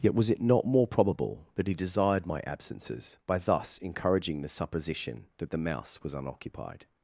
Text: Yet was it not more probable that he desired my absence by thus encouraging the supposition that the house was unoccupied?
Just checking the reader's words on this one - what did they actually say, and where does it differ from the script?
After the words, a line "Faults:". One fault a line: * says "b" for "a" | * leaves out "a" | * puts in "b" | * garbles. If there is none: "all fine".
Yet was it not more probable that he desired my absences by thus encouraging the supposition that the mouse was unoccupied?
Faults:
* says "absences" for "absence"
* says "mouse" for "house"